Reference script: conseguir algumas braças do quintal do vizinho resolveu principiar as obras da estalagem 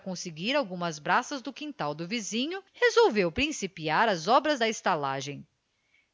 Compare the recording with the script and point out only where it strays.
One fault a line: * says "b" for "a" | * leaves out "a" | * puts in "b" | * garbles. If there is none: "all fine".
all fine